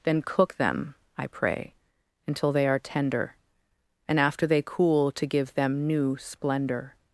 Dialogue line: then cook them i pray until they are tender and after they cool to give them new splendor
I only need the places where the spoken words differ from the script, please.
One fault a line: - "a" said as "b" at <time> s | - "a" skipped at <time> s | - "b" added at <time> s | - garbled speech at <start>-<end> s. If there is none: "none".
none